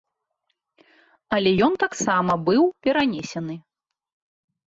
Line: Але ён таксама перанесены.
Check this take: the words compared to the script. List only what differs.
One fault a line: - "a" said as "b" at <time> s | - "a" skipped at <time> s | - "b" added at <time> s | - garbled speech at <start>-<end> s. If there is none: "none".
- "быў" added at 2.5 s